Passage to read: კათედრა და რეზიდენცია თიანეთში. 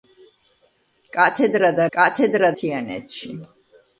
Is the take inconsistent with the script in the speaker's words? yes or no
yes